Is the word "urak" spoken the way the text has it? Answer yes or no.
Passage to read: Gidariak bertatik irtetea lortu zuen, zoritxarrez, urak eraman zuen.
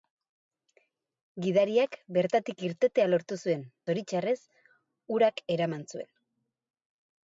yes